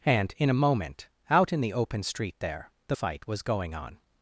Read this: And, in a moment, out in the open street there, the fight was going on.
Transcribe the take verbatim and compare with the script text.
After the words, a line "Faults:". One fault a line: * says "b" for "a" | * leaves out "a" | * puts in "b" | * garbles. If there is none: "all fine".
And, in a moment, out in the open street there, the fight was going on.
Faults:
all fine